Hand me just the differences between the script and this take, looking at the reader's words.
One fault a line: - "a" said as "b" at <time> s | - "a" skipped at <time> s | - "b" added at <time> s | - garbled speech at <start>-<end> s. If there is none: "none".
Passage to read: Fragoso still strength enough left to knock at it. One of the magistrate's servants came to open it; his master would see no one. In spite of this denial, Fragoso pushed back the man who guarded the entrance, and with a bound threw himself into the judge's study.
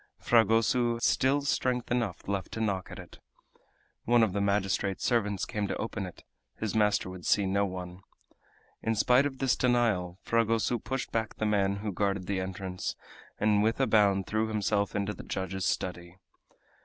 none